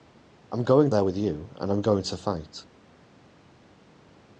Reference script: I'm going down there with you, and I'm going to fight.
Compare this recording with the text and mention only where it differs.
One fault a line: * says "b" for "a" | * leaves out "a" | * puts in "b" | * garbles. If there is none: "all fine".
* leaves out "down"